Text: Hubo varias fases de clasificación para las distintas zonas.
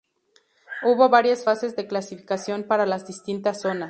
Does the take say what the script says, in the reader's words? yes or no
yes